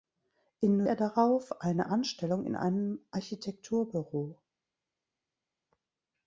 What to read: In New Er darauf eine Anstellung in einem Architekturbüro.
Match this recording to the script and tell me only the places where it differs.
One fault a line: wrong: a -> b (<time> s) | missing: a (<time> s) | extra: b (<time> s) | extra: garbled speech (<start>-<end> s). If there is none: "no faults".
no faults